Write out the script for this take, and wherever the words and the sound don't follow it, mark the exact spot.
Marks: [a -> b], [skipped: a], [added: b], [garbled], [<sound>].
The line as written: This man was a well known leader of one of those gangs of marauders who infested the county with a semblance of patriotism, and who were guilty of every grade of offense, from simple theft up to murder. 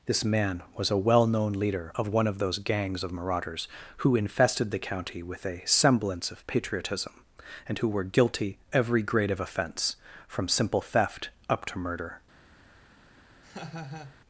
This man was a well known leader of one of those gangs of marauders who infested the county with a semblance of patriotism, and who were guilty [skipped: of] every grade of offense, from simple theft up to murder. [laugh]